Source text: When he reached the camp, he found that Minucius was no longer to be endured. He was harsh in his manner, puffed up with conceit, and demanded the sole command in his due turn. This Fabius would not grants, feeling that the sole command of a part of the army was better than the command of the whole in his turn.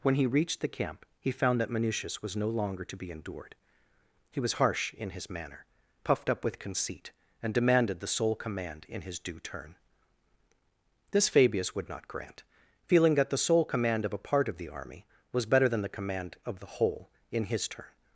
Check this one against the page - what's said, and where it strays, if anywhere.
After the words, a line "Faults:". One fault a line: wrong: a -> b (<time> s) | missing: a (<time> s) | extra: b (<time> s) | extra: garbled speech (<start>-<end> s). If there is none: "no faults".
When he reached the camp, he found that Minucius was no longer to be endured. He was harsh in his manner, puffed up with conceit, and demanded the sole command in his due turn. This Fabius would not grant, feeling that the sole command of a part of the army was better than the command of the whole in his turn.
Faults:
wrong: grants -> grant (12.1 s)